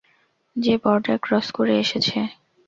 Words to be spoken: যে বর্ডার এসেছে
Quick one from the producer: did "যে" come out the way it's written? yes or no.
yes